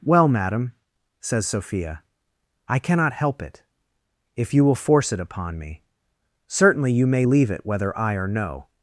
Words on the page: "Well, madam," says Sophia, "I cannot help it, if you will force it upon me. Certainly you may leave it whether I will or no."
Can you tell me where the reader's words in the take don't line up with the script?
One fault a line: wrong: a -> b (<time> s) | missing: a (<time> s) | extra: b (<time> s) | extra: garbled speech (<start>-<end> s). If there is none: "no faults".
missing: will (8.1 s)